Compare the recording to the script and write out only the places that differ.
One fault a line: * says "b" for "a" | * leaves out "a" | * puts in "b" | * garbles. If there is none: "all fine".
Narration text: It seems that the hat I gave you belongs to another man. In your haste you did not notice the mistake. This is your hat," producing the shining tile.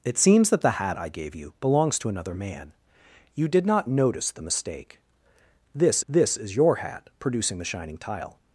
* leaves out "In your haste"
* puts in "this"